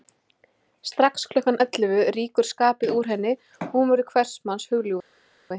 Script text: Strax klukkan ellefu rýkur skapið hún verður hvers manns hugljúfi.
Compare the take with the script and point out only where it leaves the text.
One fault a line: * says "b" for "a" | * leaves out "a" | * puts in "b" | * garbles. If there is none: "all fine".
* puts in "úr henni og"